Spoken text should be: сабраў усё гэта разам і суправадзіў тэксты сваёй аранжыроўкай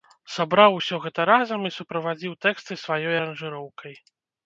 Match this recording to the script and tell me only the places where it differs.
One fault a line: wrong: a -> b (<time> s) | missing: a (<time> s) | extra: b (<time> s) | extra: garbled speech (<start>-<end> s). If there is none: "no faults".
no faults